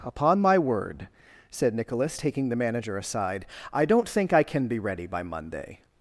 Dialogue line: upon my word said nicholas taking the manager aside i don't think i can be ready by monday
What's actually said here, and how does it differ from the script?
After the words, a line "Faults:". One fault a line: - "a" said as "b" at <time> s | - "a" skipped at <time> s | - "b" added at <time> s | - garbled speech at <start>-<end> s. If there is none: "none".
upon my word said nicholas taking the manager aside i don't think i can be ready by monday
Faults:
none